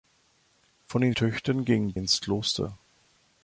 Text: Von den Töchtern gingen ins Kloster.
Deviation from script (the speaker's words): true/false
false